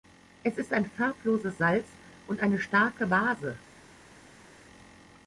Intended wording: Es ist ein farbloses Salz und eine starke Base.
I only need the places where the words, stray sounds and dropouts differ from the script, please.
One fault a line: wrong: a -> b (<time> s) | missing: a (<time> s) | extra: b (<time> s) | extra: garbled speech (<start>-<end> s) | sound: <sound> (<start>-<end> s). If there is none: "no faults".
no faults